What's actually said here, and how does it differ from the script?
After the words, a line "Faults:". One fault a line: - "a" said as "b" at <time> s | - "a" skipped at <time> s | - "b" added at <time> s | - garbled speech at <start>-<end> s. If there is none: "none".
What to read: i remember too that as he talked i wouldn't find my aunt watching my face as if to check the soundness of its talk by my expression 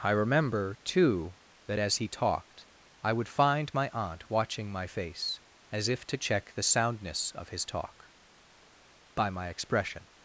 i remember too that as he talked i would find my aunt watching my face as if to check the soundness of his talk by my expression
Faults:
- "wouldn't" said as "would" at 3.1 s
- "its" said as "his" at 7.5 s